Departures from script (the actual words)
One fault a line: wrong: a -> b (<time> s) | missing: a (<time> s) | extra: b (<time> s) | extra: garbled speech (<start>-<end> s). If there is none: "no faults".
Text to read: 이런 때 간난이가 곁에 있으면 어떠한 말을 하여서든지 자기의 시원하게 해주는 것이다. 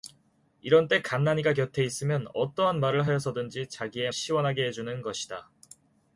no faults